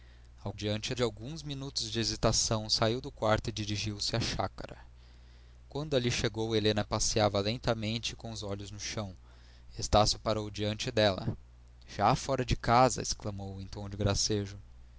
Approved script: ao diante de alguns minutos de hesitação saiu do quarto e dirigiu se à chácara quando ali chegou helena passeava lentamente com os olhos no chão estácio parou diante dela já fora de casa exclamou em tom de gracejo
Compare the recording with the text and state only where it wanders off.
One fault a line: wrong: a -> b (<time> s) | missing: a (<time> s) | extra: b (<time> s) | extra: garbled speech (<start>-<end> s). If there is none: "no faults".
no faults